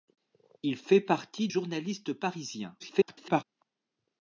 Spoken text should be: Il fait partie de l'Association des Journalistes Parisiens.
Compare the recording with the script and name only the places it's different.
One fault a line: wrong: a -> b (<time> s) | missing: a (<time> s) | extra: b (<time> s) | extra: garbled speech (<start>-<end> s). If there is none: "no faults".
missing: de l'Association des (1.5 s)
extra: garbled speech (2.8-3.4 s)